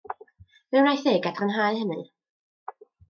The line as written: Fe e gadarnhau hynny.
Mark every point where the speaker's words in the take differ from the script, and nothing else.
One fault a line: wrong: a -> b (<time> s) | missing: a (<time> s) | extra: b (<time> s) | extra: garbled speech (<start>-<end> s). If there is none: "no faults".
extra: wnaeth (0.8 s)